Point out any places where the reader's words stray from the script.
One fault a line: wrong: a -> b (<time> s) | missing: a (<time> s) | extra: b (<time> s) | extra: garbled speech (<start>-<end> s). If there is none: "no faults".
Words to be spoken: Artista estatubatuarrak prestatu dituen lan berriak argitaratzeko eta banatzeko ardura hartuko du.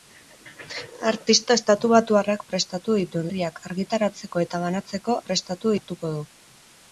missing: lan (3.3 s)
wrong: ardura -> prestatu (5.3 s)